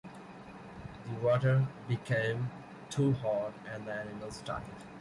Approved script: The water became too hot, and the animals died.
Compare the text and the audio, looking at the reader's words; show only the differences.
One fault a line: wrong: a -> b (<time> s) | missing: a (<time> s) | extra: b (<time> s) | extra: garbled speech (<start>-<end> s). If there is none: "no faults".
no faults